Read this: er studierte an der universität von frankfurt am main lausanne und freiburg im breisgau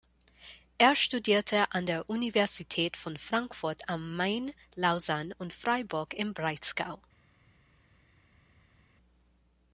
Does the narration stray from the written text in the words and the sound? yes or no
no